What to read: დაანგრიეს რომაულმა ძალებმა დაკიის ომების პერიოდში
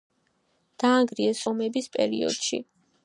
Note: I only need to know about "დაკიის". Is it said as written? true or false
false